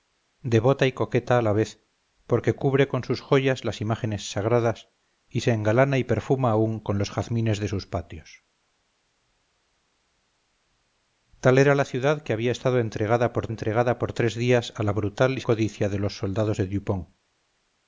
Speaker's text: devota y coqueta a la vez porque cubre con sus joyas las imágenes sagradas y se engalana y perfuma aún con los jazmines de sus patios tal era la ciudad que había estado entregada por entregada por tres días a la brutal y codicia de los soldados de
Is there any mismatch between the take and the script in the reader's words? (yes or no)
no